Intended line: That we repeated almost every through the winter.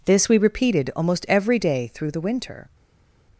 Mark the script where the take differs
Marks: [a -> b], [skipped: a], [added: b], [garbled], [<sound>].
[That -> This] we repeated almost every [added: day] through the winter.